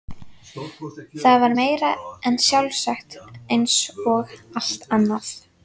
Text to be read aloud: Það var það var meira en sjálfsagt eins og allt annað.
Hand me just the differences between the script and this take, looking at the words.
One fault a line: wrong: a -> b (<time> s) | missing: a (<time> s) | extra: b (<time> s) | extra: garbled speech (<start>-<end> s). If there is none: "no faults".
missing: það var (1.5 s)